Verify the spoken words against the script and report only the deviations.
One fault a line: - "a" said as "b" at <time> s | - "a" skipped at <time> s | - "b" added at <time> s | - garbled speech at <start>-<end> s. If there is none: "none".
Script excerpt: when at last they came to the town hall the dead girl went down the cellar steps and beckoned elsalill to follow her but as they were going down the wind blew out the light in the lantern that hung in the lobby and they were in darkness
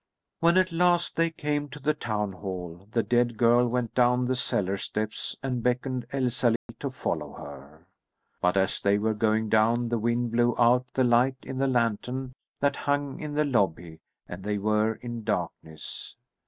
none